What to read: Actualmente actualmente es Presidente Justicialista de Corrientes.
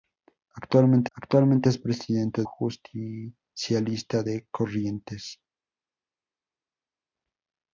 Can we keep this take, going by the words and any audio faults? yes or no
yes